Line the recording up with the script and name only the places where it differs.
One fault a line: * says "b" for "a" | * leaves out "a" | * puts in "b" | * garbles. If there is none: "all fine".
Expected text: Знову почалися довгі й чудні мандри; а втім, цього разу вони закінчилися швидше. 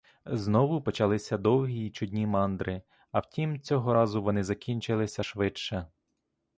all fine